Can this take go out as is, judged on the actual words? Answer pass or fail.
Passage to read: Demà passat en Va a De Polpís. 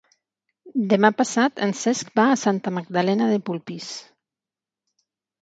fail